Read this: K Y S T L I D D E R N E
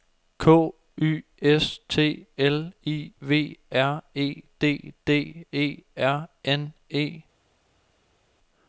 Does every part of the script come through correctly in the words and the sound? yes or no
no